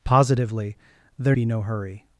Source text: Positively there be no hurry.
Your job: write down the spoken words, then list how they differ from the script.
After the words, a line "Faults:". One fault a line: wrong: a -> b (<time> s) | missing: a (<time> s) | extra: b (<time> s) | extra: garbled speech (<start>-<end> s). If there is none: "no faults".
Positively there be no hurry.
Faults:
no faults